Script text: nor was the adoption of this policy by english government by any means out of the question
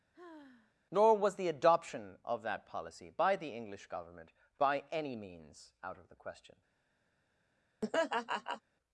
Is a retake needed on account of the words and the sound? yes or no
yes